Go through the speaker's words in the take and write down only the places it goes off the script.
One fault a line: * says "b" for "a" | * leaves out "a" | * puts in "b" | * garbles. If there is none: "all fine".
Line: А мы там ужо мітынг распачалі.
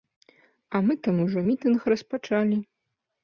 all fine